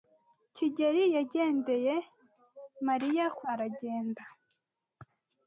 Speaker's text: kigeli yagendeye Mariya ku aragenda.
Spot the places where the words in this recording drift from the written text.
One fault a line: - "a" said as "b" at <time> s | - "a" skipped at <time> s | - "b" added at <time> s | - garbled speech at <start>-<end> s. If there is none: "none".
none